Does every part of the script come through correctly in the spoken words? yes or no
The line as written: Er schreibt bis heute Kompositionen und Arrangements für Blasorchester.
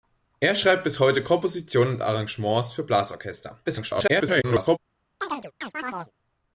no